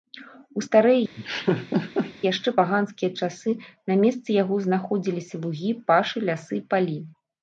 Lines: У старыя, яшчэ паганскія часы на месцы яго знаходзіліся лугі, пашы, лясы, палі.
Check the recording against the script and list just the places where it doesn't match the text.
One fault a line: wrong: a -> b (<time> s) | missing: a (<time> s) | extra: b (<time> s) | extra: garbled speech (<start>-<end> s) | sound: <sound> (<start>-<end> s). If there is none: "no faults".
sound: laugh (1.2-2.1 s)